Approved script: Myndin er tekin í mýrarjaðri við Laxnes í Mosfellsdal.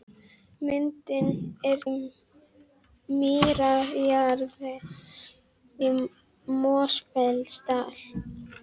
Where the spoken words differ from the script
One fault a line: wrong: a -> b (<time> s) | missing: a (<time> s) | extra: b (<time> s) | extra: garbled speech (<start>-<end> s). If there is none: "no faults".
missing: tekin (1.8 s)
missing: við Laxnes (4.7 s)